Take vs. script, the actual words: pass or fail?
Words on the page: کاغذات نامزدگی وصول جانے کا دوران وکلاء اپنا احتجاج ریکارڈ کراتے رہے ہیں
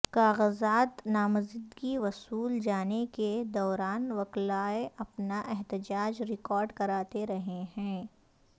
fail